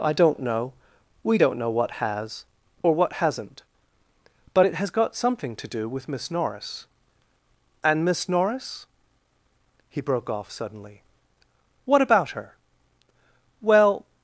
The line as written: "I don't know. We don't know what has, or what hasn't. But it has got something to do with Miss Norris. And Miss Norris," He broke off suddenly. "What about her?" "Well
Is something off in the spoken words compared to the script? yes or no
no